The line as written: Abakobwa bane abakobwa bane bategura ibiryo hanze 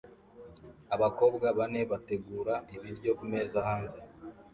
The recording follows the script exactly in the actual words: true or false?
false